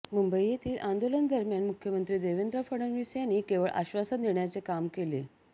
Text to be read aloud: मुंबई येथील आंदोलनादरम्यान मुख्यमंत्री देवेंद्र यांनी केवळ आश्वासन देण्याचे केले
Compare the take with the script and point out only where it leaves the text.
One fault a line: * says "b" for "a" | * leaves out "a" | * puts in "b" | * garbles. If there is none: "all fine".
* puts in "फडणवीस"
* puts in "काम"